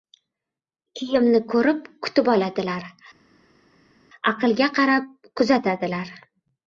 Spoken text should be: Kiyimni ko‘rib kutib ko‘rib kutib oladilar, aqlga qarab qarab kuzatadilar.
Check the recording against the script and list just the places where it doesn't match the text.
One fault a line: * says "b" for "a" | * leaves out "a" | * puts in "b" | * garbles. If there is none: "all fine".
* leaves out "ko‘rib kutib"
* leaves out "qarab"